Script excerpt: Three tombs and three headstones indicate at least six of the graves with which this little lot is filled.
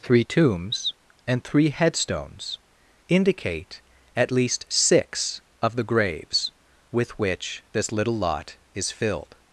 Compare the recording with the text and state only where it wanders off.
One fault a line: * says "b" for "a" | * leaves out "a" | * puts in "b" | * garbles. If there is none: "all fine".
all fine